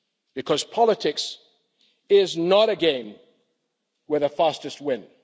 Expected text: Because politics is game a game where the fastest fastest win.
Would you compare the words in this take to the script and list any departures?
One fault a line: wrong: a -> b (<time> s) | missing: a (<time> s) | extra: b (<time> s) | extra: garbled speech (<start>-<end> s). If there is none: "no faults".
wrong: game -> not (2.4 s)
missing: fastest (4.8 s)